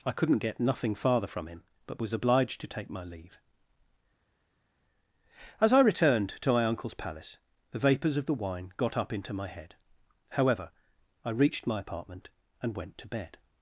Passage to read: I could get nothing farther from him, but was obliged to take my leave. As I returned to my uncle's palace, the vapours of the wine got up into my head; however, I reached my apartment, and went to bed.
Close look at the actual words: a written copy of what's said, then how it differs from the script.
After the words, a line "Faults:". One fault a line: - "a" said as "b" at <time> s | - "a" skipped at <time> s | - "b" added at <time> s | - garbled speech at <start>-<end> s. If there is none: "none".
I couldn't get nothing farther from him, but was obliged to take my leave. As I returned to my uncle's palace, the vapours of the wine got up into my head; however, I reached my apartment, and went to bed.
Faults:
- "could" said as "couldn't" at 0.1 s